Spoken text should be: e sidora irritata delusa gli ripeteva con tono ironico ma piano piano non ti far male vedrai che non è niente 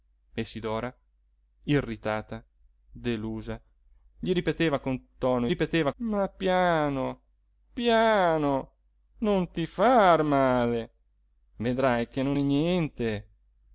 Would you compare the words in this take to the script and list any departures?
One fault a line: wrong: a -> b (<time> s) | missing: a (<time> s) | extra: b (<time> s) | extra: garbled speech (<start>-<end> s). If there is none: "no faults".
wrong: ironico -> ripeteva (5.5 s)